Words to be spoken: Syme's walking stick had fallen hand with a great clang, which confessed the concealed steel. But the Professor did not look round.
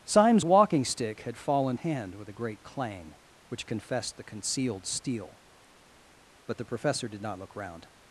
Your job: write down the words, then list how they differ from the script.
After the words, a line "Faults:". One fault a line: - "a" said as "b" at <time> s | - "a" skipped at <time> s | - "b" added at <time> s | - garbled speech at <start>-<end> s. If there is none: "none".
Syme's walking stick had fallen hand with a great clang, which confessed the concealed steel. But the Professor did not look round.
Faults:
none